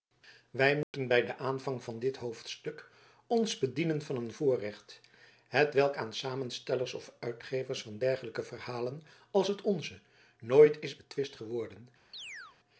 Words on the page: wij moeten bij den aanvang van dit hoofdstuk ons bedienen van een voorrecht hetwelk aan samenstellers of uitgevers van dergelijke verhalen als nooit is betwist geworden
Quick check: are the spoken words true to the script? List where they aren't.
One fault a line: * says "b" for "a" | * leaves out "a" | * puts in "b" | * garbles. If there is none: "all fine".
* puts in "het onze"